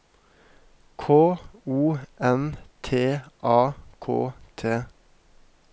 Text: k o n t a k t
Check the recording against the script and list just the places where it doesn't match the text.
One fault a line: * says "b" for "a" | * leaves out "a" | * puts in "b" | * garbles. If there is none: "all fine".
all fine